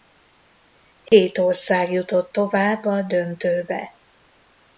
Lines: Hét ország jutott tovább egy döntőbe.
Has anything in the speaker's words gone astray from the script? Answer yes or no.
yes